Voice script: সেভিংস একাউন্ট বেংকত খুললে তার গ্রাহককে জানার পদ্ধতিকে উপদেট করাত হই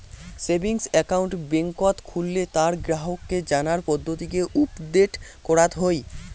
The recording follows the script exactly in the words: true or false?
true